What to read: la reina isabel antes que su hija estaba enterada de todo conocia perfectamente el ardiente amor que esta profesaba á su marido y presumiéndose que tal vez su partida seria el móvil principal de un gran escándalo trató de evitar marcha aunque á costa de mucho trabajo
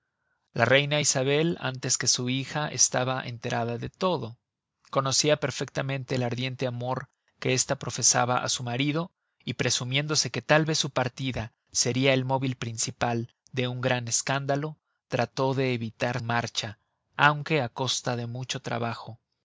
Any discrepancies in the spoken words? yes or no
no